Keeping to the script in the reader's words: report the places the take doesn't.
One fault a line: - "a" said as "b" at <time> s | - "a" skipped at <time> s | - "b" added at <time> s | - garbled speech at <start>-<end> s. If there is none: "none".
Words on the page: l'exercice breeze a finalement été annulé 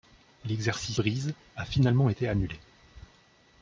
none